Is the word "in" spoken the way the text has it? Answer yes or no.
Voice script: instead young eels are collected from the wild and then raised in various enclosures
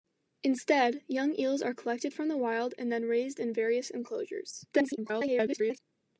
yes